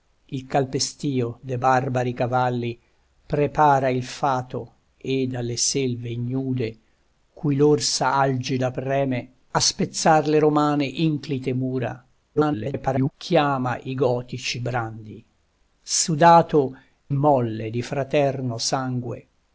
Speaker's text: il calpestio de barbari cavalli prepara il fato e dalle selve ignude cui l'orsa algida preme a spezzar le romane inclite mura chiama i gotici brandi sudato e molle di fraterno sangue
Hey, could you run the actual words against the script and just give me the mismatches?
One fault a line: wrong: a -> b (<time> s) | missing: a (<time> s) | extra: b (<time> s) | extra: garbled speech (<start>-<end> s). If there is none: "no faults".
extra: garbled speech (12.3-13.1 s)
missing: e (16.8 s)